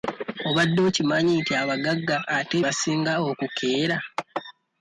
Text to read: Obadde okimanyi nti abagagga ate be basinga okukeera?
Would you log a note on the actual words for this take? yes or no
yes